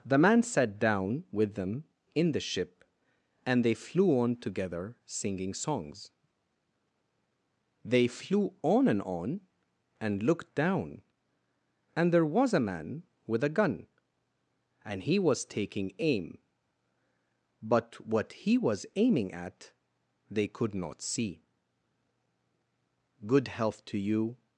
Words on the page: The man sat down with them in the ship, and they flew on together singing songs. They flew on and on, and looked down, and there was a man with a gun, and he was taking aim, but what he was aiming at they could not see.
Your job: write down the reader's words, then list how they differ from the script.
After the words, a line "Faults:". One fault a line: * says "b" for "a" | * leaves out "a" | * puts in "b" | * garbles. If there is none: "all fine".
The man sat down with them in the ship, and they flew on together singing songs. They flew on and on, and looked down, and there was a man with a gun, and he was taking aim, but what he was aiming at they could not see. "Good health to you
Faults:
* puts in "Good health to you"